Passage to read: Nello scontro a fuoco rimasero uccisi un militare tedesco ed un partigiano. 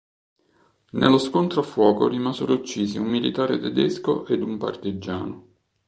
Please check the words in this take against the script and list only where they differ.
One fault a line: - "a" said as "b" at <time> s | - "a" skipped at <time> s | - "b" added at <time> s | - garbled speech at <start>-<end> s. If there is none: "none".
none